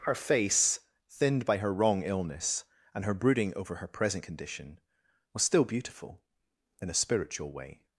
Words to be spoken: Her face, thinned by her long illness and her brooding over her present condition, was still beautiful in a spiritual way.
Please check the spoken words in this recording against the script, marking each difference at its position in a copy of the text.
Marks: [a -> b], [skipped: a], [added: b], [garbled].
Her face, thinned by her [long -> wrong] illness and her brooding over her present condition, was still beautiful in a spiritual way.